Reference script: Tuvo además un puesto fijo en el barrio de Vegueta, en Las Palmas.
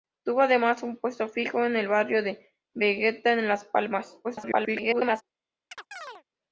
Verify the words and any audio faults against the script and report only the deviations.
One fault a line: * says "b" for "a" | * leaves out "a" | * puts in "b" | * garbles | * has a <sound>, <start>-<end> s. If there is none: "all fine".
* garbles
* has a chirp, 5.7-6.2 s